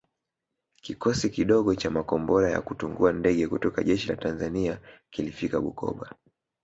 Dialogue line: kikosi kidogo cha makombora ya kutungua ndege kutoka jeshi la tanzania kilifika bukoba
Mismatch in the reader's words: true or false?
false